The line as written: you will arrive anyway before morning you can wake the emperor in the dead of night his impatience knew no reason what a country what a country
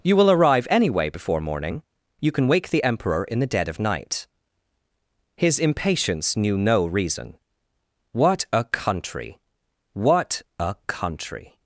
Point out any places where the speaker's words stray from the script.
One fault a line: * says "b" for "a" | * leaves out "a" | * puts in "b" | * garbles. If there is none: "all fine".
all fine